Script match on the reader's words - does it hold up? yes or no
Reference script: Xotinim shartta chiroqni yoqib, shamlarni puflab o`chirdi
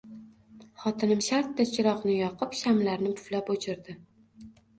yes